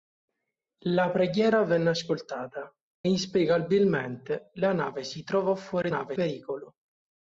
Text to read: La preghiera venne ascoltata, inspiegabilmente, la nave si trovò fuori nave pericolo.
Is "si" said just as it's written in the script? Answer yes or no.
yes